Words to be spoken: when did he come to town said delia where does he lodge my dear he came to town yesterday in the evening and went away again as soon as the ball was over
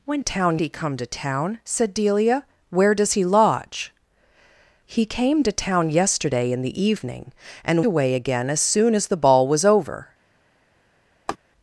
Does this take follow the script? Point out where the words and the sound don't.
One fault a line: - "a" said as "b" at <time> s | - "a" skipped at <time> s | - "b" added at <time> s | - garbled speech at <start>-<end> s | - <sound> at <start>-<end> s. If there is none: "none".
- "did" said as "town" at 0.2 s
- "my dear" skipped at 3.9 s
- "went" skipped at 7.8 s
- laugh at 11.3-11.4 s